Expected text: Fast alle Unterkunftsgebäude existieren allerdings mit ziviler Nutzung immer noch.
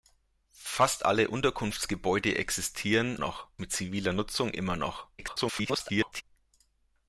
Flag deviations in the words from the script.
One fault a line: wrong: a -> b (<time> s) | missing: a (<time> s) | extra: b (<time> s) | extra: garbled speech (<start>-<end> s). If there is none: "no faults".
wrong: allerdings -> noch (3.2 s)
extra: garbled speech (5.2-6.2 s)